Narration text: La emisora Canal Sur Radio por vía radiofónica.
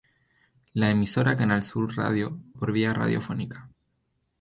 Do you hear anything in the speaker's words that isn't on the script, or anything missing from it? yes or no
no